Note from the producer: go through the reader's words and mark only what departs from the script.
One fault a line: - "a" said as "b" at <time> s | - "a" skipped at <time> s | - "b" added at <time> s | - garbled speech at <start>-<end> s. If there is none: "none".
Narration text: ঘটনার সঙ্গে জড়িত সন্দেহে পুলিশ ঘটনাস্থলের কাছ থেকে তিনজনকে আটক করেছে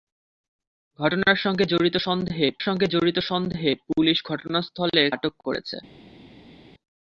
- "পুলিশ ঘটনাস্থলের কাছ থেকে তিনজনকে" said as "সঙ্গে জড়িত সন্দেহে পুলিশ ঘটনাস্থলের" at 2.6 s